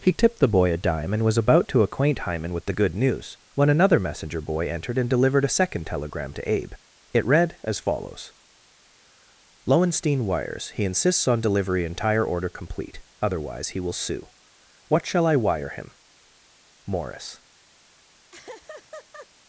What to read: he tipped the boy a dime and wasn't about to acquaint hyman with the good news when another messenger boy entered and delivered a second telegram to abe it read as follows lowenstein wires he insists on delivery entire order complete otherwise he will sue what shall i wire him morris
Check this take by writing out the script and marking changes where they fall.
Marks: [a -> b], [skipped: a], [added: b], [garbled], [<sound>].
he tipped the boy a dime and [wasn't -> was] about to acquaint hyman with the good news when another messenger boy entered and delivered a second telegram to abe it read as follows lowenstein wires he insists on delivery entire order complete otherwise he will sue what shall i wire him morris [laugh]